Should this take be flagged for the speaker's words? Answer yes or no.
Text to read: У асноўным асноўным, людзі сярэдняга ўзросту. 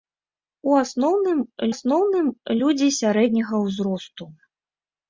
no